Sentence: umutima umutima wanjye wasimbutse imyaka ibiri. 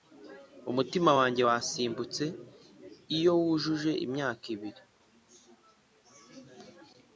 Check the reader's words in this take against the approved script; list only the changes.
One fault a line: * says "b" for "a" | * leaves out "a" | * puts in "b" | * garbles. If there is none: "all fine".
* leaves out "umutima"
* puts in "iyo wujuje"